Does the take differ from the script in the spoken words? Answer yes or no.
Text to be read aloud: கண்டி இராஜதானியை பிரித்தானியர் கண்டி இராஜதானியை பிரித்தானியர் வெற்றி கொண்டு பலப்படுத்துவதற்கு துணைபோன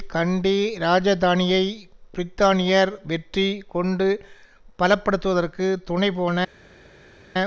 yes